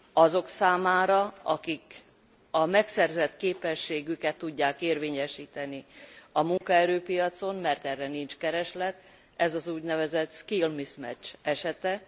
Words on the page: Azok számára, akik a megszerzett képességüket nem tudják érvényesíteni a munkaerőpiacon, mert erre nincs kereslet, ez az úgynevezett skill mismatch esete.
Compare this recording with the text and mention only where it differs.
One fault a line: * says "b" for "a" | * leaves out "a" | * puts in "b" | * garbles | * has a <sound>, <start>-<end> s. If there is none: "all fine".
* leaves out "nem"
* has a dropout, 6.6-6.6 s